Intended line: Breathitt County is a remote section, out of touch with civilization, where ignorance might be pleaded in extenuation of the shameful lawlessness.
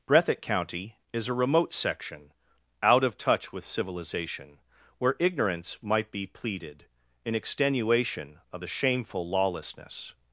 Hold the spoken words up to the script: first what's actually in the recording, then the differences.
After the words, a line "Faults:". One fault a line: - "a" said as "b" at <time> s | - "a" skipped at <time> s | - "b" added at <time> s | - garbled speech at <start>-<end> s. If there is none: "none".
Breathitt County is a remote section, out of touch with civilization, where ignorance might be pleaded in extenuation of the shameful lawlessness.
Faults:
none